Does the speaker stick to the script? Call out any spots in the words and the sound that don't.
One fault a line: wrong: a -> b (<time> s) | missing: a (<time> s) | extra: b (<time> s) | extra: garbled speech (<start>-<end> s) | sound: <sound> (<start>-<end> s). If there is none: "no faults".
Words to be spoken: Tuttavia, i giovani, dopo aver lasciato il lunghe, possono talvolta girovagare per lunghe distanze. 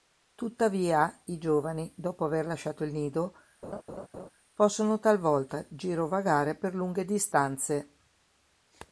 wrong: lunghe -> nido (2.9 s)
sound: laugh (3.6-4.3 s)